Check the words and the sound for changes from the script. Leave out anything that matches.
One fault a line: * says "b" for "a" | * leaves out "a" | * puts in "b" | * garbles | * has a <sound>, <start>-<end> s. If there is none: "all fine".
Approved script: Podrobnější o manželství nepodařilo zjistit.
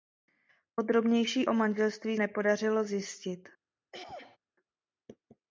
* has a throat clearing, 3.9-4.4 s